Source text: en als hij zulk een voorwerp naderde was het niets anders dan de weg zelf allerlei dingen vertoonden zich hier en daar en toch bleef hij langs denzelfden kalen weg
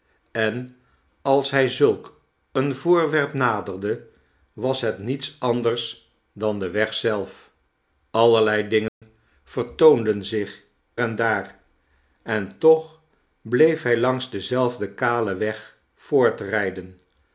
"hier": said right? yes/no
no